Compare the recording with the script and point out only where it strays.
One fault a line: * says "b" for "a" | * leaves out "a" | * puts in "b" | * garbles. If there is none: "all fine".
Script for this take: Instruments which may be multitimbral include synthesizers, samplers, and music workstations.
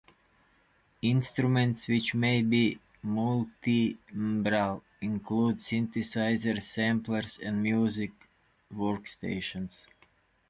all fine